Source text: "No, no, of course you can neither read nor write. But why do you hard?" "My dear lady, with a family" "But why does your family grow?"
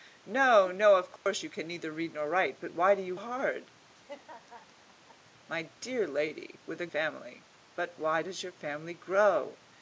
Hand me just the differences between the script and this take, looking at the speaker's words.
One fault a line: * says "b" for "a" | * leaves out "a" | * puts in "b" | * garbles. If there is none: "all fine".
all fine